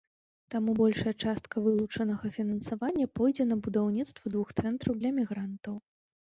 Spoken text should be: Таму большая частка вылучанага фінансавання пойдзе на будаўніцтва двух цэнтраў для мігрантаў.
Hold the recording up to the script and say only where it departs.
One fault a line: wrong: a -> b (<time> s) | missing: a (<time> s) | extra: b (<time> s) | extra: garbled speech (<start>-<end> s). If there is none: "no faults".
no faults